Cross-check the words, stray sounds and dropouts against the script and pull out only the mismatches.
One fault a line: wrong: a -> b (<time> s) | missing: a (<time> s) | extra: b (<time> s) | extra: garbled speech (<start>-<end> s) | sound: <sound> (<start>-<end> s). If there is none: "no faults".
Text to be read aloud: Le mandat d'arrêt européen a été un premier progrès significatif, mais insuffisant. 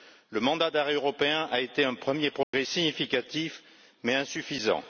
sound: dropout (2.4-2.5 s)